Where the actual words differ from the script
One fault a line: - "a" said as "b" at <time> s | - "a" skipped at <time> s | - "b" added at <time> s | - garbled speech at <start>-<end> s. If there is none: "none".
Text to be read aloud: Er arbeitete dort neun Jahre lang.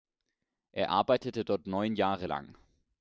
none